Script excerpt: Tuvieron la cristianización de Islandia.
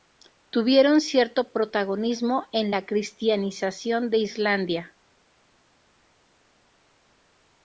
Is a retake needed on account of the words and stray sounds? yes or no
yes